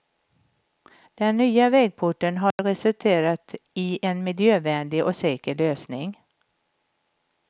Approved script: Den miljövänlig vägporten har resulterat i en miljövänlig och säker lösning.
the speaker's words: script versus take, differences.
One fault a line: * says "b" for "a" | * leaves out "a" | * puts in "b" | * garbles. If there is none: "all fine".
* says "nya" for "miljövänlig"